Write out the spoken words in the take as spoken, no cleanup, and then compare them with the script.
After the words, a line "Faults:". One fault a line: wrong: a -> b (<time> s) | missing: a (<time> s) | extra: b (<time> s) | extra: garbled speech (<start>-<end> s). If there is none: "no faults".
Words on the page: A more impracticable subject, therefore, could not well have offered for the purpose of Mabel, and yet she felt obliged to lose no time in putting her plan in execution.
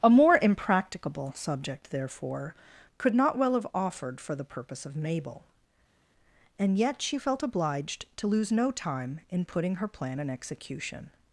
A more impracticable subject, therefore, could not well have offered for the purpose of Mabel, and yet she felt obliged to lose no time in putting her plan in execution.
Faults:
no faults